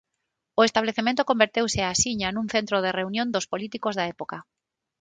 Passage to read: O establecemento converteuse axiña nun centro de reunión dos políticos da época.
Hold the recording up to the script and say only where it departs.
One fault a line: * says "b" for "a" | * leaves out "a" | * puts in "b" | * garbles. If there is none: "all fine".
all fine